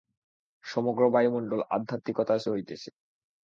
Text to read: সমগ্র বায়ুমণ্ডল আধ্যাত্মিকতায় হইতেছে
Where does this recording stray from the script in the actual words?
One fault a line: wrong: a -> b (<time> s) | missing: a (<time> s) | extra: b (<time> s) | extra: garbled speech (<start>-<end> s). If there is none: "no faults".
no faults